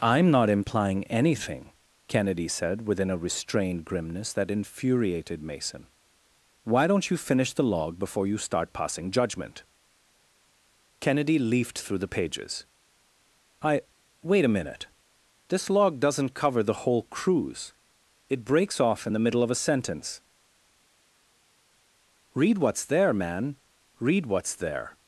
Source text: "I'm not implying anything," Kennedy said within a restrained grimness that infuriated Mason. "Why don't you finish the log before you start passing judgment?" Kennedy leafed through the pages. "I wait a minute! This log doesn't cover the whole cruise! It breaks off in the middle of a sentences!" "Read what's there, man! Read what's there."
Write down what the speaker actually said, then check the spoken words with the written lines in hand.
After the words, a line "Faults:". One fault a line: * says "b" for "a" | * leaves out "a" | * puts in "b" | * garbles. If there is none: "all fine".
"I'm not implying anything," Kennedy said within a restrained grimness that infuriated Mason. "Why don't you finish the log before you start passing judgment?" Kennedy leafed through the pages. "I wait a minute! This log doesn't cover the whole cruise! It breaks off in the middle of a sentence!" "Read what's there, man! Read what's there."
Faults:
* says "sentence" for "sentences"